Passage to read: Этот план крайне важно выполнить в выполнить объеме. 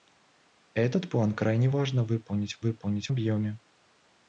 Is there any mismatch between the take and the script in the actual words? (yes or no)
no